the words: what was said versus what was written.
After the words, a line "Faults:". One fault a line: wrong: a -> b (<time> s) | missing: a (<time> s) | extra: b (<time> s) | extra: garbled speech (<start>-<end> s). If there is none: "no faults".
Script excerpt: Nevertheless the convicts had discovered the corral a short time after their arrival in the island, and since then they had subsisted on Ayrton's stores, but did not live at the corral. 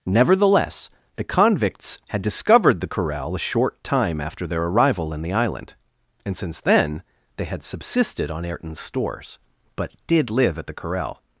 Nevertheless the convicts had discovered the corral a short time after their arrival in the island, and since then they had subsisted on Ayrton's stores, but did live at the corral.
Faults:
missing: not (10.3 s)